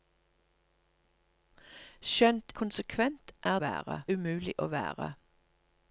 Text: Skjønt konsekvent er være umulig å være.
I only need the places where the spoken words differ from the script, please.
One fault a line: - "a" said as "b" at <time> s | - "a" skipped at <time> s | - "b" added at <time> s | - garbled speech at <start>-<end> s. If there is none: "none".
none